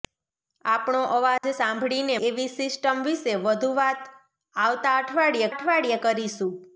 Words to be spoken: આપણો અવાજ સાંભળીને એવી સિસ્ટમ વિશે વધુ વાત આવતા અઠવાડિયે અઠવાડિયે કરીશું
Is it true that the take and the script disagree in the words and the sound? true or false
true